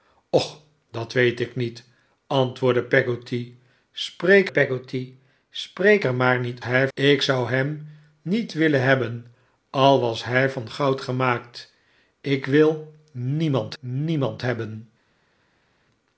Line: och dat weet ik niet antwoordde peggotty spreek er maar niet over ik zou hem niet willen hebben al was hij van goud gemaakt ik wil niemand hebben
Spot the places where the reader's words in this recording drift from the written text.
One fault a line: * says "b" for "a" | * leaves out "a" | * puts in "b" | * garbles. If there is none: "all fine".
* puts in "peggotty spreek"
* says "hij" for "over"
* puts in "niemand"